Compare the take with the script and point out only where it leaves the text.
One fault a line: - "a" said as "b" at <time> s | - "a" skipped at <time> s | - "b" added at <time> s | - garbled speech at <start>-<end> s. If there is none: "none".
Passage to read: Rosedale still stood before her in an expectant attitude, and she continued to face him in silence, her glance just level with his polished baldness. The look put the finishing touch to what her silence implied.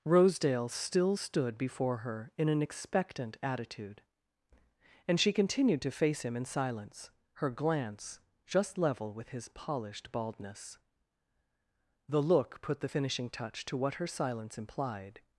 none